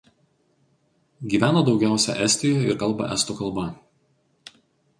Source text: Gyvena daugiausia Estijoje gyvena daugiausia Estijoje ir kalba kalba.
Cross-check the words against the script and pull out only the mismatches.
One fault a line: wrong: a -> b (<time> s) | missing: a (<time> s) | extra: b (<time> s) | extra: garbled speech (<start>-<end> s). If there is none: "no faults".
missing: gyvena daugiausia Estijoje (2.7 s)
extra: estų (3.2 s)